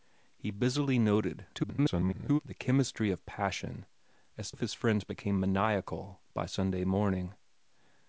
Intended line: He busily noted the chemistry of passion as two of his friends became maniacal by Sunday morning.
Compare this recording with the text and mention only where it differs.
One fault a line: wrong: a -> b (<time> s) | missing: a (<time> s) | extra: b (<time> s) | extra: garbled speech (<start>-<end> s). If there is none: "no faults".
extra: garbled speech (1.5-2.4 s)
missing: two (4.5 s)